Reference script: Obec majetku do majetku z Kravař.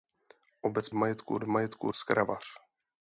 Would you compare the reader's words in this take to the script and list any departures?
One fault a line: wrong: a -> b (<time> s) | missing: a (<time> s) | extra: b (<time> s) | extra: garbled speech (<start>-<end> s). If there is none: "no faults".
no faults